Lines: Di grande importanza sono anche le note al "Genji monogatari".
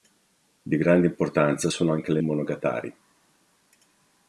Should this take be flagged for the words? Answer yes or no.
yes